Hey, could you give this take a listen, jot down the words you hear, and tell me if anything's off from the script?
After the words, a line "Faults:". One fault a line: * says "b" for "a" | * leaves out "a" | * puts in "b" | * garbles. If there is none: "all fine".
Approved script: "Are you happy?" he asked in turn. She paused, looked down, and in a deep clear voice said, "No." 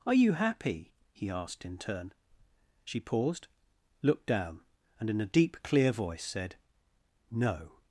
"Are you happy?" he asked in turn. She paused, looked down, and in a deep clear voice said, "No."
Faults:
all fine